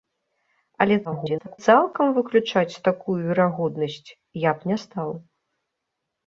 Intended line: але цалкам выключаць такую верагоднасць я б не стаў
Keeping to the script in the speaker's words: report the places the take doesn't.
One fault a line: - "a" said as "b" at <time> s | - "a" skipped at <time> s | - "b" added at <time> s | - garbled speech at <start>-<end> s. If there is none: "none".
- garbled speech at 1.0-1.6 s